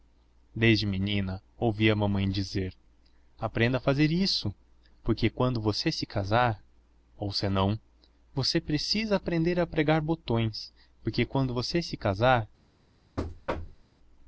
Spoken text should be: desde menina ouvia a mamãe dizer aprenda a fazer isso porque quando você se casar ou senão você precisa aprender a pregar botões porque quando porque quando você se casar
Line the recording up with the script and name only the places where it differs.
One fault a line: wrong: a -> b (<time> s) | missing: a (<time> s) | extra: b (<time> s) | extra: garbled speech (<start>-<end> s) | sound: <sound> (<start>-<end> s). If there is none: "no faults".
missing: porque quando (11.5 s)
sound: thud (13.2-13.8 s)